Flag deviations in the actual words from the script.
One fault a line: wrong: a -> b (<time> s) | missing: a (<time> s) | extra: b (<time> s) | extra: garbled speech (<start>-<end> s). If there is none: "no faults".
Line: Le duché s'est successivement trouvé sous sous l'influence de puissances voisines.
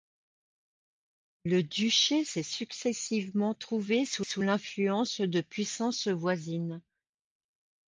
no faults